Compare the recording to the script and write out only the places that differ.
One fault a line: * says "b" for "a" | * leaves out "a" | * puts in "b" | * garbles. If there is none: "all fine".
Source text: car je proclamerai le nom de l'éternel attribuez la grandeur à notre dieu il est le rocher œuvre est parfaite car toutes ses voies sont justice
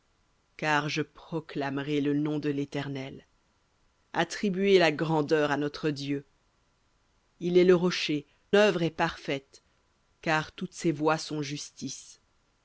all fine